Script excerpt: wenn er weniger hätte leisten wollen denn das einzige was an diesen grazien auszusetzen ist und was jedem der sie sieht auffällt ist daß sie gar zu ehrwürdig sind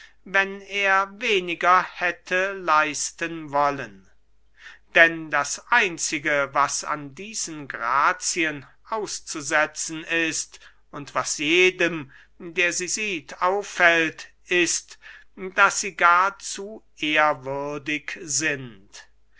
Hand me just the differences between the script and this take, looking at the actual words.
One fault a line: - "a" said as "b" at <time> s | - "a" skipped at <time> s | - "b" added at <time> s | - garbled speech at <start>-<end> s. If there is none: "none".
none